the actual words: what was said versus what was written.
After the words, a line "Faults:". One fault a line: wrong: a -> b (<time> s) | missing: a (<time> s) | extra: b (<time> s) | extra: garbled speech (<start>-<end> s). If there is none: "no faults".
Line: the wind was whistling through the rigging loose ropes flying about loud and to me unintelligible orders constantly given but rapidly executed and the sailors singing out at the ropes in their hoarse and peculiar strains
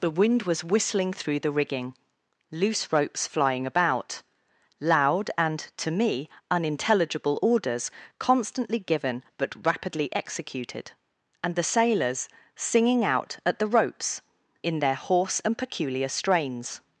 the wind was whistling through the rigging loose ropes flying about loud and to me unintelligible orders constantly given but rapidly executed and the sailors singing out at the ropes in their hoarse and peculiar strains
Faults:
no faults